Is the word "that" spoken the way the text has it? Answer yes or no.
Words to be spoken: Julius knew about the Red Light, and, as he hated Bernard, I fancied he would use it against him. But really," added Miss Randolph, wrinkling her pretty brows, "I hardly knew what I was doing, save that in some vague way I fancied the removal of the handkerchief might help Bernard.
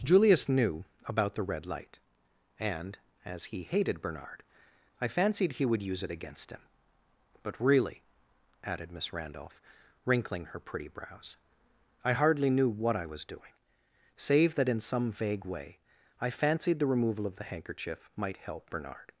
yes